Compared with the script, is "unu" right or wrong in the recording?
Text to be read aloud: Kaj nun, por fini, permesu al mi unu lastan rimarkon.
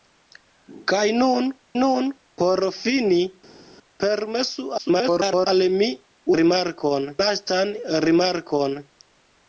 wrong